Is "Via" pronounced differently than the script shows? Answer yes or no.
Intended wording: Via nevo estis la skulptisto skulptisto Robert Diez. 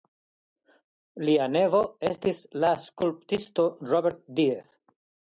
yes